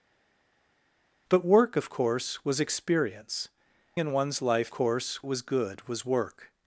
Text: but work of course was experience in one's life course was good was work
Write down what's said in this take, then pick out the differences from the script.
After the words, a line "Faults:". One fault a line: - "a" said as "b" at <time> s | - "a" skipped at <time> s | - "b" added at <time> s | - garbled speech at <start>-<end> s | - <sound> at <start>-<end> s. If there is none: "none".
but work of course was experience in one's life course was good was work
Faults:
none